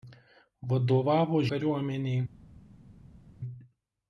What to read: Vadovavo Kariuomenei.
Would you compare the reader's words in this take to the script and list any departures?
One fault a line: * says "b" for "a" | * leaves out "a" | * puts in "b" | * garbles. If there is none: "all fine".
all fine